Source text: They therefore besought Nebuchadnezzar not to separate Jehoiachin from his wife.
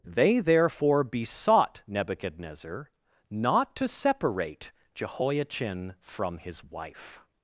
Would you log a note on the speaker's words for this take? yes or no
no